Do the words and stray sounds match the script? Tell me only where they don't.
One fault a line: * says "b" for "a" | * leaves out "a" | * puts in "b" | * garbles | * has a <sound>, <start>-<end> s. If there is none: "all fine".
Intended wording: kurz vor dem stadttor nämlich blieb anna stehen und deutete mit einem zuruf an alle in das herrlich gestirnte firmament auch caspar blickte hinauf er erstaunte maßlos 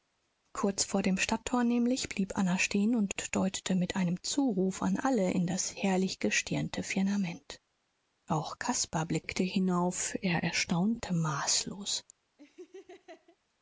* has a laugh, 12.4-13.4 s